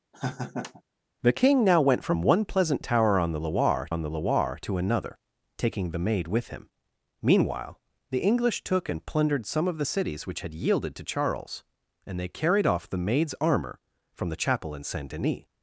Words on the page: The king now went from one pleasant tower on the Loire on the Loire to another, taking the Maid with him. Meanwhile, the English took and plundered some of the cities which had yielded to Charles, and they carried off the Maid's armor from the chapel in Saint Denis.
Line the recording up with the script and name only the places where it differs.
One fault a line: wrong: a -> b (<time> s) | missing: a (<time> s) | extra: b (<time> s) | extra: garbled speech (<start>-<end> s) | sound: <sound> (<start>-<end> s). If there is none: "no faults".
sound: laugh (0.1-0.8 s)